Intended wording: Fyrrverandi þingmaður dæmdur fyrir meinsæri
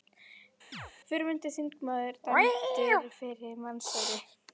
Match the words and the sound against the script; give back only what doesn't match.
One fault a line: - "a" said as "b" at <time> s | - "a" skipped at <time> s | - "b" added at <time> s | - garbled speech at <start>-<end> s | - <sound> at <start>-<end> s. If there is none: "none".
- chirp at 0.7-0.9 s